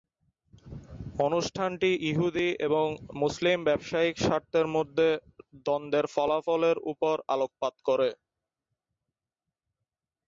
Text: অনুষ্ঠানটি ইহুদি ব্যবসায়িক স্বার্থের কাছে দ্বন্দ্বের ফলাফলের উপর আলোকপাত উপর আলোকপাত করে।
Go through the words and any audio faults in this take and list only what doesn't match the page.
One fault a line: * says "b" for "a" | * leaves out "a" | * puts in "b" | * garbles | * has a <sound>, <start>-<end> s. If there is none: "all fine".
* puts in "এবং মুসলিম"
* says "মধ্যে" for "কাছে"
* leaves out "উপর আলোকপাত"